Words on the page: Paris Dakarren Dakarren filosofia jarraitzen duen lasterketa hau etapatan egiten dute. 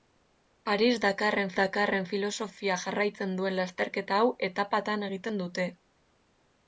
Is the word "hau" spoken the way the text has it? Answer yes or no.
yes